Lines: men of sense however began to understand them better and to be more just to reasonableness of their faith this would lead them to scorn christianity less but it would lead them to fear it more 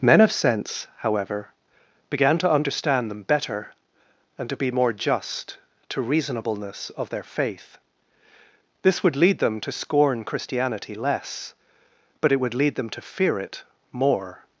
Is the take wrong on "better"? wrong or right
right